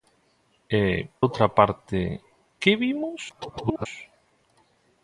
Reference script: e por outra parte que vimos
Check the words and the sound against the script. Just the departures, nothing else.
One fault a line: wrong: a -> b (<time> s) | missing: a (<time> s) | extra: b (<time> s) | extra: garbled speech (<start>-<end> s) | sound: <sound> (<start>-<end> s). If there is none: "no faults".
missing: por (0.8 s)
extra: garbled speech (3.3-3.9 s)